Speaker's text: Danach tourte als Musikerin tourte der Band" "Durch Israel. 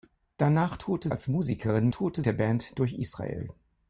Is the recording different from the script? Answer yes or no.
no